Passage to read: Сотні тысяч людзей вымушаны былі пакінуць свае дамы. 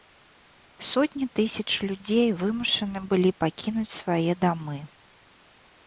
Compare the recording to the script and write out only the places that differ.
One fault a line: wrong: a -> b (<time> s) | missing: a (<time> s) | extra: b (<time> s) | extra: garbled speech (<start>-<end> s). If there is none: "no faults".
no faults